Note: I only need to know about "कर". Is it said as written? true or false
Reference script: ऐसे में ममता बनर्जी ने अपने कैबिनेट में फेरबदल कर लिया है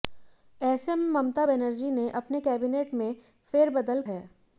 false